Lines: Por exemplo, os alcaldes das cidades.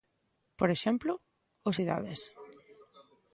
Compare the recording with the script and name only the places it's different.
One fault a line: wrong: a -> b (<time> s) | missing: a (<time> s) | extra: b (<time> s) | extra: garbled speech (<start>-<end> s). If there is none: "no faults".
missing: alcaldes das (1.8 s)